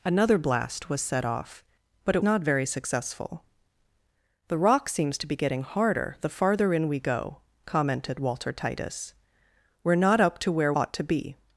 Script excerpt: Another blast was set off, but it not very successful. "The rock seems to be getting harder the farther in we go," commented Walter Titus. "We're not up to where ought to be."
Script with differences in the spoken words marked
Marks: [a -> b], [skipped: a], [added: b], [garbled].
Another blast was set off, but it not very successful. "The rock seems to be getting harder the farther in we go," commented Walter Titus. "We're not up to where ought to be."